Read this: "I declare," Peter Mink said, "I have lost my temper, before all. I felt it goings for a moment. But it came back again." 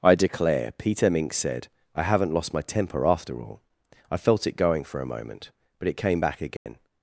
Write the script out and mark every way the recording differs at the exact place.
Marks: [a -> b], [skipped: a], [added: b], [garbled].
"I declare," Peter Mink said, "I [have -> haven't] lost my temper, [before -> after] all. I felt it [goings -> going] for a moment. But it came back again."